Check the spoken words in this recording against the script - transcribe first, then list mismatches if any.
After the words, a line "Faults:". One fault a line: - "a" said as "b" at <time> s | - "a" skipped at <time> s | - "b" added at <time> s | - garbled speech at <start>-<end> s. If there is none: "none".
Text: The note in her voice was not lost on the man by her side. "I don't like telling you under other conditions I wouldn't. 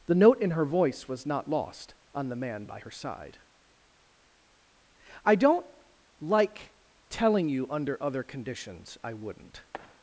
The note in her voice was not lost on the man by her side. "I don't like telling you under other conditions I wouldn't.
Faults:
none